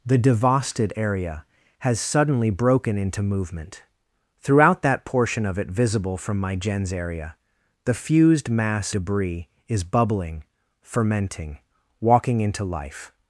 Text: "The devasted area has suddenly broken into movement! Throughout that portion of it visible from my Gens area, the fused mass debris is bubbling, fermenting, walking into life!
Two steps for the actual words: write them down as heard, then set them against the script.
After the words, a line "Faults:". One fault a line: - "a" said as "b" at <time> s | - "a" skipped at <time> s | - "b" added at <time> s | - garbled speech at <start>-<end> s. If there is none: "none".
"The devasted area has suddenly broken into movement! Throughout that portion of it visible from my Gens area, the fused mass debris is bubbling, fermenting, walking into life!
Faults:
none